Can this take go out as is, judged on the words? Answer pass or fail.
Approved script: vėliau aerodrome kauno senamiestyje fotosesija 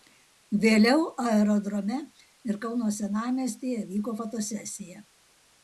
fail